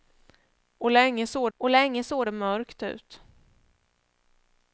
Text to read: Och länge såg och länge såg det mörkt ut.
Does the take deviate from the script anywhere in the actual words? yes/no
no